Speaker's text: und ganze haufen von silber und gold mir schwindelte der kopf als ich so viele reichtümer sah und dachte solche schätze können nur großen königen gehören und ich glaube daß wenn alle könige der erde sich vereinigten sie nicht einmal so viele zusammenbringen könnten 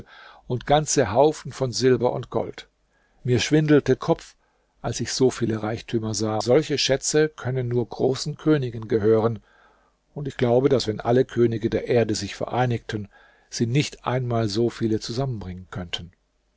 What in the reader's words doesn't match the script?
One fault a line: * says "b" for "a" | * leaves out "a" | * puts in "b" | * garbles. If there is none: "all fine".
* leaves out "der"
* leaves out "und dachte"